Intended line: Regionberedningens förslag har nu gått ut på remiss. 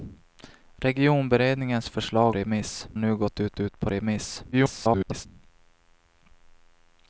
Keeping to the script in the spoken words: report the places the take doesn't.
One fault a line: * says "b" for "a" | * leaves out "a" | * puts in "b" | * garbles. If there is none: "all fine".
* says "remiss" for "har"
* puts in "ut"
* garbles